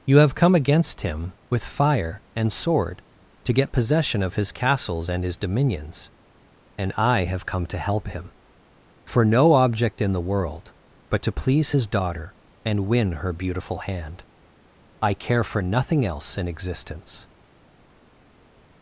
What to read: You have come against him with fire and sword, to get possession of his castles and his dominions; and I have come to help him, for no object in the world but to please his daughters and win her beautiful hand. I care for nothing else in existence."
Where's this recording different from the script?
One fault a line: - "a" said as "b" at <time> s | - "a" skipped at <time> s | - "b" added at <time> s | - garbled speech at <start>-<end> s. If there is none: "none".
- "daughters" said as "daughter" at 11.9 s